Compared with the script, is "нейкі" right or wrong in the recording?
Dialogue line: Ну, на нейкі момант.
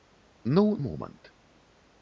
wrong